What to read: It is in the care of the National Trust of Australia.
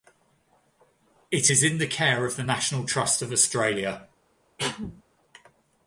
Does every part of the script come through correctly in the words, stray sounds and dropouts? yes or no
no